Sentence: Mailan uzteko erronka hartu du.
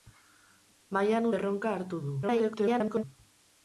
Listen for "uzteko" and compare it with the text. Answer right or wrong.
wrong